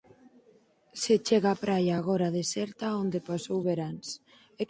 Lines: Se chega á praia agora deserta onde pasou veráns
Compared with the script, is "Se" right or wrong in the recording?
right